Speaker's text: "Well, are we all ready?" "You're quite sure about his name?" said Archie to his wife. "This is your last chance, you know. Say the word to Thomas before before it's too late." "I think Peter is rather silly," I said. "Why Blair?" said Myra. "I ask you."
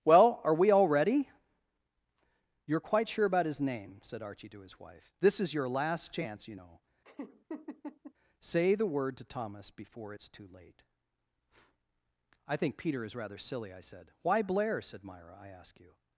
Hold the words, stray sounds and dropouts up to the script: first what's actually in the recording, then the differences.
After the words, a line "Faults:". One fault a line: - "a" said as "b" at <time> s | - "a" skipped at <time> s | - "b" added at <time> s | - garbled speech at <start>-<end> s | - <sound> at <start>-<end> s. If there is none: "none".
"Well, are we all ready?" "You're quite sure about his name?" said Archie to his wife. "This is your last chance, you know. Say the word to Thomas before it's too late." "I think Peter is rather silly," I said. "Why Blair?" said Myra. "I ask you."
Faults:
- laugh at 7.0-8.1 s
- "before" skipped at 10.1 s